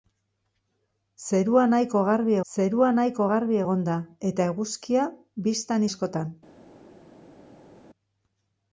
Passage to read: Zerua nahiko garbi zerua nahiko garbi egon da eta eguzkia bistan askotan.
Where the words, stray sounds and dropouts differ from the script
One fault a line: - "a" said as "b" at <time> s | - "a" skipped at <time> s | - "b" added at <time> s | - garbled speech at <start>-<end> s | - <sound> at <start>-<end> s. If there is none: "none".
none